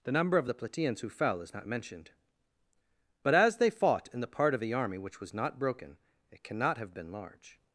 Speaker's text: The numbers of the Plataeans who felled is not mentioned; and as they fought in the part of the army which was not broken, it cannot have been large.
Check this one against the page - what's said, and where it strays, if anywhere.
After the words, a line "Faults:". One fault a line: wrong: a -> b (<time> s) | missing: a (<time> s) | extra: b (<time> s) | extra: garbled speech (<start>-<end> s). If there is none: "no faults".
The number of the Plataeans who fell is not mentioned; but as they fought in the part of the army which was not broken, it cannot have been large.
Faults:
wrong: numbers -> number (0.1 s)
wrong: felled -> fell (1.1 s)
wrong: and -> but (3.2 s)